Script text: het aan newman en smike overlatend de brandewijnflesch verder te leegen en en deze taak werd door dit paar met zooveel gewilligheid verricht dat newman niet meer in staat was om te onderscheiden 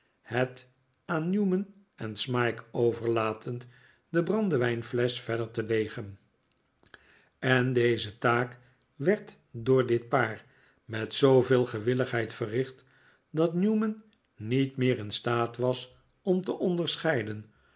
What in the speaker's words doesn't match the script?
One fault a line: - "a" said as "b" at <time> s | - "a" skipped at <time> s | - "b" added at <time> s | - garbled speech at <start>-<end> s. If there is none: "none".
- "en" skipped at 7.7 s